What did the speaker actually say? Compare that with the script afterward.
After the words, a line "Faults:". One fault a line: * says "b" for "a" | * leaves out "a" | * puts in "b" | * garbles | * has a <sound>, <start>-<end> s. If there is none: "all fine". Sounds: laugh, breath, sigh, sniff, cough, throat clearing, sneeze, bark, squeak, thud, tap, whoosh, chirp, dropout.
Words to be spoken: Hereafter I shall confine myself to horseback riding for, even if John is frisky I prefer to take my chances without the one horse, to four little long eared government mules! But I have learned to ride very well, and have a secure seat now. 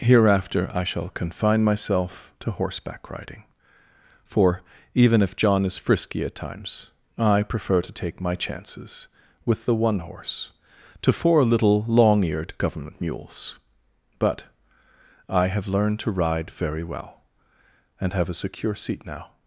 Hereafter I shall confine myself to horseback riding for, even if John is frisky at times, I prefer to take my chances with the one horse, to four little long eared government mules! But I have learned to ride very well, and have a secure seat now.
Faults:
* puts in "at times"
* says "with" for "without"